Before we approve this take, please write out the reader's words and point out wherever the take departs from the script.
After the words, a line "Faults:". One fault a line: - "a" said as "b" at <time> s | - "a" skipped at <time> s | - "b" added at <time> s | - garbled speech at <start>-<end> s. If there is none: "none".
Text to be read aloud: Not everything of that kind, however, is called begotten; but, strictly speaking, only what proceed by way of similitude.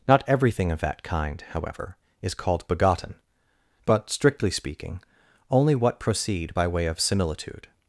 Not everything of that kind, however, is called begotten; but, strictly speaking, only what proceed by way of similitude.
Faults:
none